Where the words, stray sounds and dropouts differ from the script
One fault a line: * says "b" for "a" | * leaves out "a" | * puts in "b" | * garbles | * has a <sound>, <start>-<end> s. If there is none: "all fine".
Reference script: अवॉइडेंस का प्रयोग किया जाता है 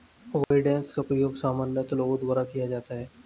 * has a dropout, 0.4-0.5 s
* puts in "सामान्यतः लोगों द्वारा"